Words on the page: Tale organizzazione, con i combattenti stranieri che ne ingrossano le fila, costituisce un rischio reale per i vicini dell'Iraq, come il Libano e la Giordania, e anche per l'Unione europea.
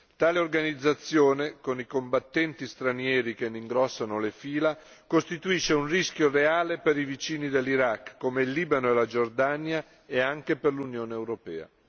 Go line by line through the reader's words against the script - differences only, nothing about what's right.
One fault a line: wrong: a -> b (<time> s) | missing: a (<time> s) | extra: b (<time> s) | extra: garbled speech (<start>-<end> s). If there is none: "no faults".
no faults